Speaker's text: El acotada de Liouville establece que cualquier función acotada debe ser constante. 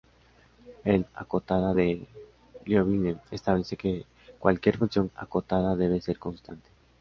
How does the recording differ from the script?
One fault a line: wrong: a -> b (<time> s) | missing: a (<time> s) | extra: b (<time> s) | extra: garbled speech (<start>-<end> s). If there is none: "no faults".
no faults